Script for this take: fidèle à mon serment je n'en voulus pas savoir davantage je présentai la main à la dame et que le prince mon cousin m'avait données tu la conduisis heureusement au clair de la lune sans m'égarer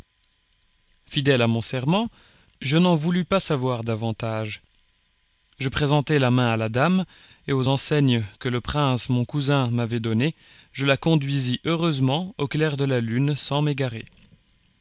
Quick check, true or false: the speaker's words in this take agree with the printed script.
false